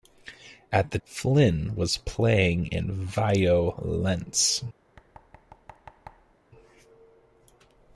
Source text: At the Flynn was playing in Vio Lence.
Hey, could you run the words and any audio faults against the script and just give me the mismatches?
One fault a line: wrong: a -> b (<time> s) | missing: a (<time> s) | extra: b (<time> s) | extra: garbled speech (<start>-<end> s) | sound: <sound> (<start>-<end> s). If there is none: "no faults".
sound: thud (5.0-6.3 s)